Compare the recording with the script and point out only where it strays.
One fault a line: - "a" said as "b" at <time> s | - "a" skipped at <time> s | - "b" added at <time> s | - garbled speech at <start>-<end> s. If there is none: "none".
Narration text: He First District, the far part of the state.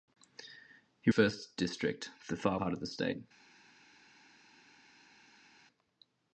none